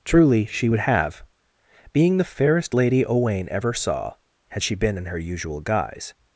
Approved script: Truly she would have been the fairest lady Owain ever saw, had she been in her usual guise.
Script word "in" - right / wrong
right